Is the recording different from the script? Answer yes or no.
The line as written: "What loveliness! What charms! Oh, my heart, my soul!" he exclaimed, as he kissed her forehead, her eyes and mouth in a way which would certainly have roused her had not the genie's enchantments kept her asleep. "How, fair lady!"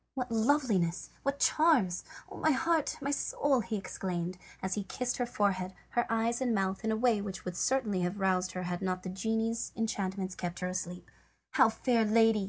no